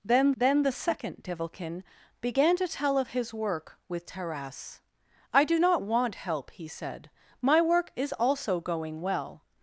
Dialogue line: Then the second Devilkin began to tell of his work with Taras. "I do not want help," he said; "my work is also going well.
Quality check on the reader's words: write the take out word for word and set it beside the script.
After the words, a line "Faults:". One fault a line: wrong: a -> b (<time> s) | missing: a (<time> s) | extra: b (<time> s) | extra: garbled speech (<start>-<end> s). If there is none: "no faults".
Then then the second Devilkin began to tell of his work with Taras. "I do not want help," he said; "my work is also going well.
Faults:
extra: then (0.3 s)